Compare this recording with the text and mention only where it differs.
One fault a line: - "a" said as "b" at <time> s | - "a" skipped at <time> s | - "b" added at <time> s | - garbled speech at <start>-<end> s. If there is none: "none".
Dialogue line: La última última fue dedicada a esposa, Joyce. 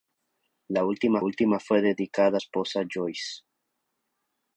none